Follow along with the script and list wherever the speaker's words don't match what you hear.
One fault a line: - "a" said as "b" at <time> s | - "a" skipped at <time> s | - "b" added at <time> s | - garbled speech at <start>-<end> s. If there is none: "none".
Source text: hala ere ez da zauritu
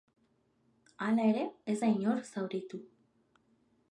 - "inor" added at 2.0 s